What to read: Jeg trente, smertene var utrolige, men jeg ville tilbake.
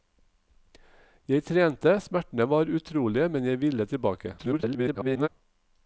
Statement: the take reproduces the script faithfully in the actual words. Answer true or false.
false